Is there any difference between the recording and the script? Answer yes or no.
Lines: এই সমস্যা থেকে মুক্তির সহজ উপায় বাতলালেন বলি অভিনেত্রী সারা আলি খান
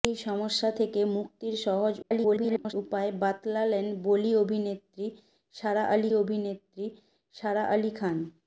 yes